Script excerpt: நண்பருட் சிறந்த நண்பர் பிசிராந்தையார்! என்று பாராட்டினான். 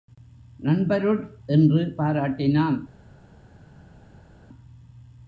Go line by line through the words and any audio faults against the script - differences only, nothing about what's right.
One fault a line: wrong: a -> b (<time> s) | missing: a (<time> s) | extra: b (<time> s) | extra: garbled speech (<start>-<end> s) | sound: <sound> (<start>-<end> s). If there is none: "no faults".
missing: சிறந்த நண்பர் பிசிராந்தையார் (1.2 s)